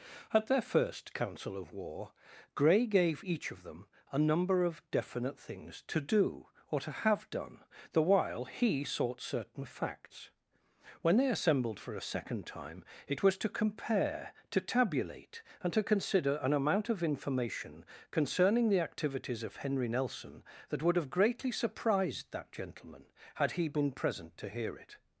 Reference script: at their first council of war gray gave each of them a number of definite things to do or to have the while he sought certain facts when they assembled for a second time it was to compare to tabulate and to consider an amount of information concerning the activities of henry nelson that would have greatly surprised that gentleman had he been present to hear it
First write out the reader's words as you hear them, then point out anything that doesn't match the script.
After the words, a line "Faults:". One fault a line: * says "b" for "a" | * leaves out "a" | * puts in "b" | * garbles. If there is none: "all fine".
at their first council of war gray gave each of them a number of definite things to do or to have done the while he sought certain facts when they assembled for a second time it was to compare to tabulate and to consider an amount of information concerning the activities of henry nelson that would have greatly surprised that gentleman had he been present to hear it
Faults:
* puts in "done"